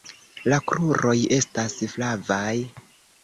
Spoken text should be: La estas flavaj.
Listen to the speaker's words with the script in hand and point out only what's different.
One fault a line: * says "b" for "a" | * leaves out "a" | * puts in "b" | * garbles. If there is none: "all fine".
* puts in "kruroj"